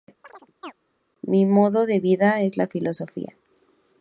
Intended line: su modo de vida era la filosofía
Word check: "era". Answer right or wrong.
wrong